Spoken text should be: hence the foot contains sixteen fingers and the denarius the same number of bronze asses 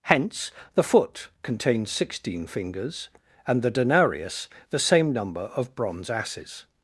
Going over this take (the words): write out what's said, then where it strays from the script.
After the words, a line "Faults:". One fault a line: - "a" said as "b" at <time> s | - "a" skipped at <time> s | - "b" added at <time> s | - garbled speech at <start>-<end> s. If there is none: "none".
hence the foot contains sixteen fingers and the denarius the same number of bronze asses
Faults:
none